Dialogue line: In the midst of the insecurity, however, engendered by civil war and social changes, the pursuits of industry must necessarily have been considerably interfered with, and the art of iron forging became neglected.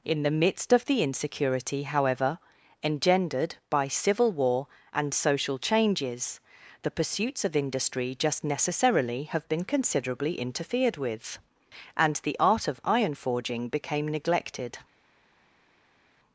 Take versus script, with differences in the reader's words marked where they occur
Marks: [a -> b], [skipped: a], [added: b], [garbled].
In the midst of the insecurity, however, engendered by civil war and social changes, the pursuits of industry [must -> just] necessarily have been considerably interfered with, and the art of iron forging became neglected.